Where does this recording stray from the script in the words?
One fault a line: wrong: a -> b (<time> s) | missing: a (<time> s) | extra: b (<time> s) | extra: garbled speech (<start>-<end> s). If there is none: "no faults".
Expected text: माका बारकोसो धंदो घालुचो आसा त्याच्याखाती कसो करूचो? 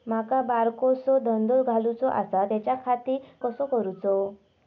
no faults